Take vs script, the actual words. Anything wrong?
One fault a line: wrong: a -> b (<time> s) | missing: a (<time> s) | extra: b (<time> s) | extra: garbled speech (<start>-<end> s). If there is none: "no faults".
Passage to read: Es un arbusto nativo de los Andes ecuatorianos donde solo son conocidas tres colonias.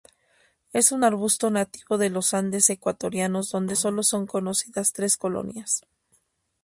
no faults